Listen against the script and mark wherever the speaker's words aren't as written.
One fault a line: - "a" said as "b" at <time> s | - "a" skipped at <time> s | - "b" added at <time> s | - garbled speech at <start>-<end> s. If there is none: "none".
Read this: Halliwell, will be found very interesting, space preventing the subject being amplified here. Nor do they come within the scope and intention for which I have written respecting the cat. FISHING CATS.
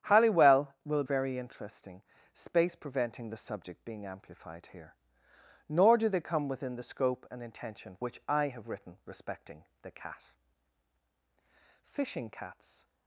- "be found" skipped at 1.0 s
- "for" skipped at 8.0 s